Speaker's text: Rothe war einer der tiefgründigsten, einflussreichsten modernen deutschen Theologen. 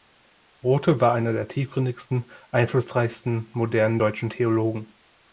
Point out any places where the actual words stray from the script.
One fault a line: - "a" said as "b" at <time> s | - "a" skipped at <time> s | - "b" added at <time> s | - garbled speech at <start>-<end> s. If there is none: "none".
none